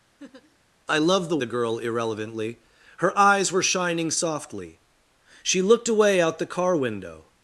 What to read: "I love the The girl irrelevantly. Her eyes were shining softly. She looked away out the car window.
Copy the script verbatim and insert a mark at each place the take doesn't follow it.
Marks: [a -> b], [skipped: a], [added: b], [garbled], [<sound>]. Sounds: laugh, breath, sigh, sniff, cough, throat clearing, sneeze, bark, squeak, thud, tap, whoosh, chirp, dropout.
[laugh] "I love the The girl irrelevantly. Her eyes were shining softly. She looked away out the car window.